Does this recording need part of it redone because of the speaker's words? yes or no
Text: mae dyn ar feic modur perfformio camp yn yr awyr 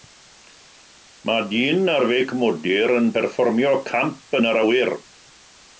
yes